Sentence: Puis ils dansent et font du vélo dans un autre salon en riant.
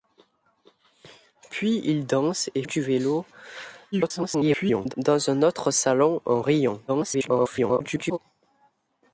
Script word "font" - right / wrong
wrong